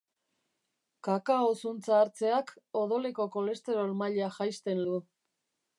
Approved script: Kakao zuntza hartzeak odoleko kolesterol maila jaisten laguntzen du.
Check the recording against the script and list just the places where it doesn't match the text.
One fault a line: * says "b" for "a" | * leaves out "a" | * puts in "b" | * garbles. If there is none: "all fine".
* leaves out "laguntzen"